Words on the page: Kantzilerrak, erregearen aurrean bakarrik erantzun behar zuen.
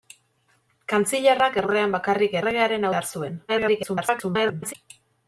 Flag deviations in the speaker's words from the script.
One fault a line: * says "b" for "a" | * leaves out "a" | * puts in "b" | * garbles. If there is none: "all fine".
* leaves out "erregearen"
* says "erregearen" for "erantzun"
* garbles